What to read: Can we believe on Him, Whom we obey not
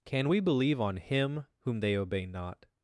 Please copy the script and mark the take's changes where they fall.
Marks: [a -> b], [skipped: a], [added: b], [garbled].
Can we believe on Him, Whom [we -> they] obey not